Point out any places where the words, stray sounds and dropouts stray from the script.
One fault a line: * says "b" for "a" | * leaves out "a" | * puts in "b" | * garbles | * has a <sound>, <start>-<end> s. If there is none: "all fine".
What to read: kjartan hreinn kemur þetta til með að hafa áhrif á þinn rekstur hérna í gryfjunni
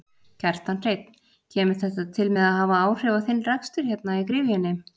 all fine